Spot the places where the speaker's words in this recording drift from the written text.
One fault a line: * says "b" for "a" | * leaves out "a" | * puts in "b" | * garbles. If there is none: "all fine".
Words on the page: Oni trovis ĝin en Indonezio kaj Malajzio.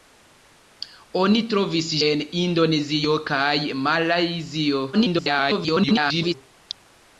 * leaves out "ĝin"
* garbles